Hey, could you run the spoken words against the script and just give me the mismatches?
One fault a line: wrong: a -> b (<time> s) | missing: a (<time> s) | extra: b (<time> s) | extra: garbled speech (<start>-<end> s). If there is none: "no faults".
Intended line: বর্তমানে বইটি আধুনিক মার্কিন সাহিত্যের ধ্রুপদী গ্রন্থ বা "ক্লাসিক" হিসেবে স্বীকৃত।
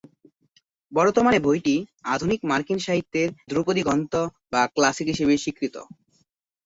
no faults